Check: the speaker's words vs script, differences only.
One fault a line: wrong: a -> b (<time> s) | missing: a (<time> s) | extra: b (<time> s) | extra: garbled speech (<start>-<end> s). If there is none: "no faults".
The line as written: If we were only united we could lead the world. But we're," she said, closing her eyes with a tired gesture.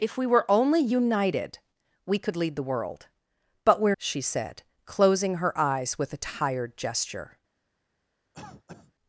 no faults